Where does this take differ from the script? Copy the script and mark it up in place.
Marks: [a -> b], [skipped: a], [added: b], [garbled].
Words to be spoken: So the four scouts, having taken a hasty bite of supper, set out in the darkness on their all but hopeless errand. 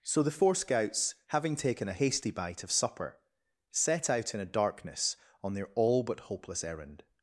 So the four scouts, having taken a hasty bite of supper, set out in [the -> a] darkness on their all but hopeless errand.